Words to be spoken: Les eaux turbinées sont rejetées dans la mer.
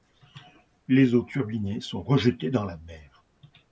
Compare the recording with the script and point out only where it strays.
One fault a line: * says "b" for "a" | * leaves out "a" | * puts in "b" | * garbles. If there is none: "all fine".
all fine